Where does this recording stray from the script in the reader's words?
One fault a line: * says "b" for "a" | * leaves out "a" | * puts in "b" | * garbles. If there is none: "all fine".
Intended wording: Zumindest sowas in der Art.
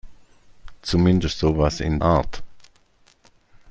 * leaves out "der"